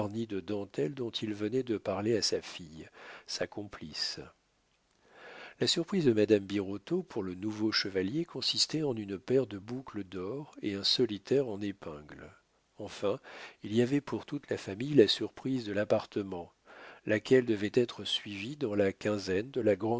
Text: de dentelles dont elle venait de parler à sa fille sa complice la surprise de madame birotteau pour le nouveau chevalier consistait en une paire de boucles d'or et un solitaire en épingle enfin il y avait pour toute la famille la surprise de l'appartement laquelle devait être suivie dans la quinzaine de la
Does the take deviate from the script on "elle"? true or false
true